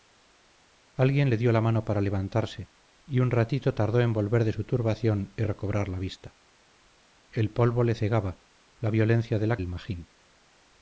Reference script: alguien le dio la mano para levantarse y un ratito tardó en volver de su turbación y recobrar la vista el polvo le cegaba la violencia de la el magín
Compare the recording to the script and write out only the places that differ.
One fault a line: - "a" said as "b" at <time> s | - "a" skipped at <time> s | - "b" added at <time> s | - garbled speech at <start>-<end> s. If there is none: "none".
none